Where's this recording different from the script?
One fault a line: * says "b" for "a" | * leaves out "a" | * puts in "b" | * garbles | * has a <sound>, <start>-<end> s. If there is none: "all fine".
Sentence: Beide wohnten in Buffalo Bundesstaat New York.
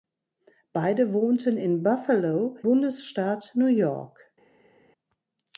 all fine